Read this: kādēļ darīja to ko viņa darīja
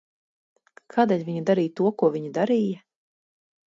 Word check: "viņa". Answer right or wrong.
right